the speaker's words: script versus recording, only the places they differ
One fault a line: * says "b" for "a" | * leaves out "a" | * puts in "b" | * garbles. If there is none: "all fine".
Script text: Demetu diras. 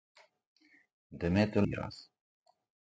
all fine